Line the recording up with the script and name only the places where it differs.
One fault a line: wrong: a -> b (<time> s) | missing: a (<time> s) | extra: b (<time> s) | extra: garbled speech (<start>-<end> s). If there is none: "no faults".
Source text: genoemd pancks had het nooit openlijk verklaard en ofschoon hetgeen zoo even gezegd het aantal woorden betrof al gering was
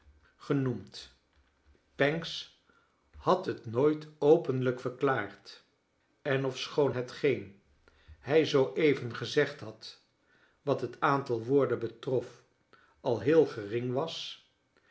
extra: hij (8.2 s)
extra: had wat (9.6 s)
extra: heel (13.2 s)